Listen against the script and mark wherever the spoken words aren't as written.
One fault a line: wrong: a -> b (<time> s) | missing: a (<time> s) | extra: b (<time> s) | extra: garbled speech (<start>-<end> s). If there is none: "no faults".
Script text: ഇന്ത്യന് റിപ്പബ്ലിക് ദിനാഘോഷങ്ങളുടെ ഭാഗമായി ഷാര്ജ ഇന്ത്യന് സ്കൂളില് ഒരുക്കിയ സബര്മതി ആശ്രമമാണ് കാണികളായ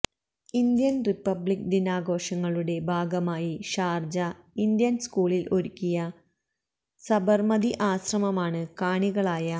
no faults